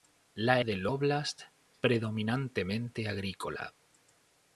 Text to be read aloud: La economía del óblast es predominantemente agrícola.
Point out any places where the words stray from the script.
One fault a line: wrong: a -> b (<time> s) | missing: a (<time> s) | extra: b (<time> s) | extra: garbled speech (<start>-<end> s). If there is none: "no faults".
missing: economía (0.7 s)
missing: es (1.4 s)